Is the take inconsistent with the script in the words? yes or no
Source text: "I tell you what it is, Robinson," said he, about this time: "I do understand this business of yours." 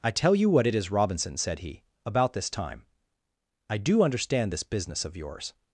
no